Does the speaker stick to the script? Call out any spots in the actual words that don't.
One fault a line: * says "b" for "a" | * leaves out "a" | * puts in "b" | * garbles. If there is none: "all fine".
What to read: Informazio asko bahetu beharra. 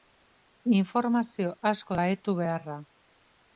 all fine